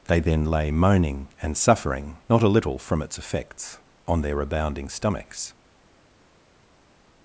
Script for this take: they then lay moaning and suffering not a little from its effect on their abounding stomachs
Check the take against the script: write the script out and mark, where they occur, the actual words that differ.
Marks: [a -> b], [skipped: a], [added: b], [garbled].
they then lay moaning and suffering not a little from its [effect -> effects] on their abounding stomachs